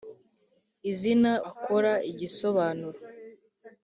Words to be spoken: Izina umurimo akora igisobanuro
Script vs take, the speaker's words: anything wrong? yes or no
yes